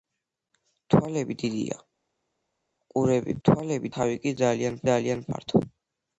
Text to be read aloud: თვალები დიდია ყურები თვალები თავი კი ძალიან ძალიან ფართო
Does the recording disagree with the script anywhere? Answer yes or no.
no